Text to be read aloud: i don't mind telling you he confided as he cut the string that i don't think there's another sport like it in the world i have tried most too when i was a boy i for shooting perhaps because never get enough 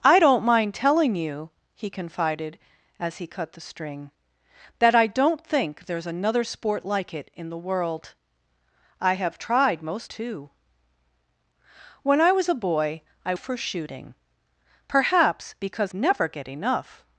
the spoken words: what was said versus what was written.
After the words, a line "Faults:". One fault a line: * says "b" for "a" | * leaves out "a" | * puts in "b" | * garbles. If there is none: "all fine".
i don't mind telling you he confided as he cut the string that i don't think there's another sport like it in the world i have tried most too when i was a boy i for shooting perhaps because never get enough
Faults:
all fine